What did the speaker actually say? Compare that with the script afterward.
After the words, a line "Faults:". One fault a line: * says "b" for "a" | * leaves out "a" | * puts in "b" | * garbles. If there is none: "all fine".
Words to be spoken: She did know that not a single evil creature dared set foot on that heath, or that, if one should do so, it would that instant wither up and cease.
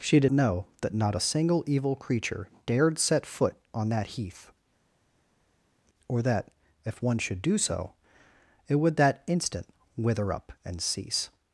She did know that not a single evil creature dared set foot on that heath, or that, if one should do so, it would that instant wither up and cease.
Faults:
all fine